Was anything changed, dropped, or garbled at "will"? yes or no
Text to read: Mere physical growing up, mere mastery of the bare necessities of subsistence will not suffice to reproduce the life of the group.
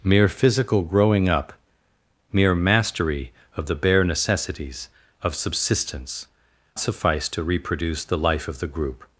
yes